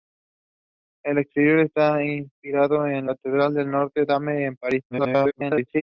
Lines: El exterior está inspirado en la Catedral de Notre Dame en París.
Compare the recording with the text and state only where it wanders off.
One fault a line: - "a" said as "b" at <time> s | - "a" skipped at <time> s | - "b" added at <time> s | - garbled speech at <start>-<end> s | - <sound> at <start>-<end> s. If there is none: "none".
- "la" skipped at 3.1 s
- garbled speech at 4.9-5.8 s